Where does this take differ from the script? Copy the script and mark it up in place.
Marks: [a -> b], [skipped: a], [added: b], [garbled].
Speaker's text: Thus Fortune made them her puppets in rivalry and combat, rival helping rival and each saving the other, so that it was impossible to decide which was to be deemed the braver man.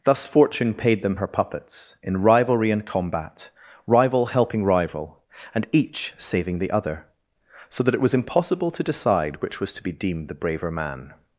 Thus Fortune [made -> paid] them her puppets in rivalry and combat, rival helping rival and each saving the other, so that it was impossible to decide which was to be deemed the braver man.